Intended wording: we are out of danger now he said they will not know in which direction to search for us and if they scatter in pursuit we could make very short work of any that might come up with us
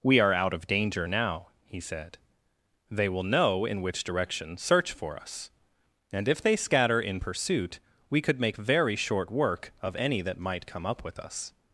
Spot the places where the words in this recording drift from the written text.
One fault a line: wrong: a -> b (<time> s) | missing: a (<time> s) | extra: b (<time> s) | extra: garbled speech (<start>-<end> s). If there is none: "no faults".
missing: not (3.2 s)
missing: to (4.6 s)